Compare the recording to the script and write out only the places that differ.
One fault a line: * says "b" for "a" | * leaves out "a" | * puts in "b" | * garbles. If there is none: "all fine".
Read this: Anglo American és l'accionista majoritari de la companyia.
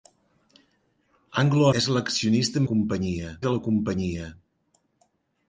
* leaves out "American"
* says "companyia" for "majoritari"